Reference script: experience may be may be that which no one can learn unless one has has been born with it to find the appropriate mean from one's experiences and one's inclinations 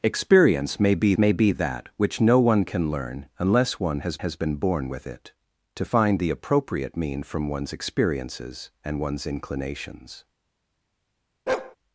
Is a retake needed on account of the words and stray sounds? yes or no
yes